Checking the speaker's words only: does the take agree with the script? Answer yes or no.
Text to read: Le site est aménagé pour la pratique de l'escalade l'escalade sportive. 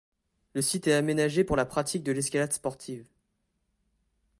no